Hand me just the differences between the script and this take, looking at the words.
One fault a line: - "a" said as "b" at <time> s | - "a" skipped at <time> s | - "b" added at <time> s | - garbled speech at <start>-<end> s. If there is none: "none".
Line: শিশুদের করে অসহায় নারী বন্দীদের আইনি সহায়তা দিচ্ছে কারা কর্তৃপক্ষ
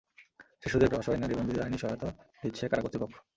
none